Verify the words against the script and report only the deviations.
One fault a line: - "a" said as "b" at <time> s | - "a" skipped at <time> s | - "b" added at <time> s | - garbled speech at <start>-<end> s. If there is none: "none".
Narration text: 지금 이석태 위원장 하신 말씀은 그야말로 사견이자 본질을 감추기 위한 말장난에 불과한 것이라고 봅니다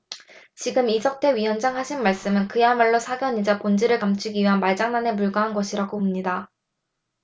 none